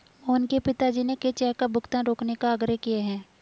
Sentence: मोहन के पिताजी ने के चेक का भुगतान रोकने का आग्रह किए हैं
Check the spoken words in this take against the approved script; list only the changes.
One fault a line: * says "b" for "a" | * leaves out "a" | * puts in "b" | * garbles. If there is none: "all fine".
all fine